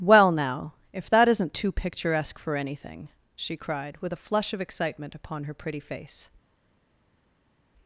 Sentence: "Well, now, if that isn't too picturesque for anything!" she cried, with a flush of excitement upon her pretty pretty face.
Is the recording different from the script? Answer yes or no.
yes